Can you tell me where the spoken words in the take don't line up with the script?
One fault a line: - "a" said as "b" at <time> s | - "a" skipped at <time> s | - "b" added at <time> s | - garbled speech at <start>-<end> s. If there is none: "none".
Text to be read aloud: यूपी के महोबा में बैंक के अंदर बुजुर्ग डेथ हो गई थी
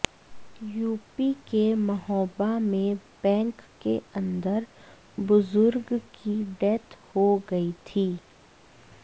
- "की" added at 6.1 s